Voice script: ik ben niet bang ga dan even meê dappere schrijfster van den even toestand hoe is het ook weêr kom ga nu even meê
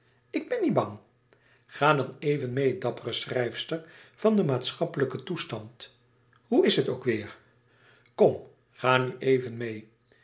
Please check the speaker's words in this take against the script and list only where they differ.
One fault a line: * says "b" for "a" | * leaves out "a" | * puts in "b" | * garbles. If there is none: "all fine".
* says "maatschappelijken" for "even"